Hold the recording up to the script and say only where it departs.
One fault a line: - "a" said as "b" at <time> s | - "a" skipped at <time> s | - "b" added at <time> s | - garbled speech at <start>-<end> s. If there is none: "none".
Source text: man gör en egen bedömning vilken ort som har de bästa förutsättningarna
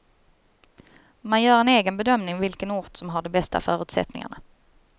none